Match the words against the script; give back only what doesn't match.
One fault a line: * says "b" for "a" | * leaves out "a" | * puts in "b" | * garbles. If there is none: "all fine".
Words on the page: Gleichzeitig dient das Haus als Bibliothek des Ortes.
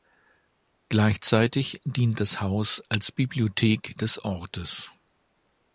all fine